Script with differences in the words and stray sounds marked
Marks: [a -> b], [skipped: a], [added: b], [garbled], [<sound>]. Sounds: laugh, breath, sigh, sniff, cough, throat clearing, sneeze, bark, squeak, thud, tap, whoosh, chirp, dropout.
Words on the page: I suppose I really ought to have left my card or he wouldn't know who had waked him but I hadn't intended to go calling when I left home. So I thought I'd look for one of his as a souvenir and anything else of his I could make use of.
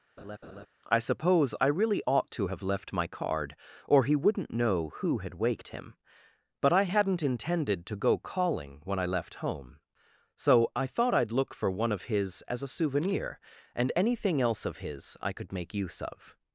[laugh] I suppose I really ought to have left my card or he wouldn't know who had waked him but I hadn't intended to go calling when I left home. So I thought I'd look for one of his as a souvenir and anything else of his I could make use of.